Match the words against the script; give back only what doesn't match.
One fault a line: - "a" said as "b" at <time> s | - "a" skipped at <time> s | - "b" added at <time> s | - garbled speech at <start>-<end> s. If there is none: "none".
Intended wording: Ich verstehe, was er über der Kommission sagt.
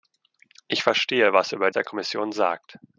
none